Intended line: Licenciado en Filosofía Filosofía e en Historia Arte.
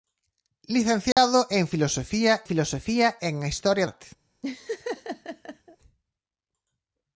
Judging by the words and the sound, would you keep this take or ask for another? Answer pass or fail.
fail